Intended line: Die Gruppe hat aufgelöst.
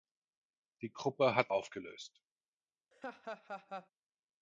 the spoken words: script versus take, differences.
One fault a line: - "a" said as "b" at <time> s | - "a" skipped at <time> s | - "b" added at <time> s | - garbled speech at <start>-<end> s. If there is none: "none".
none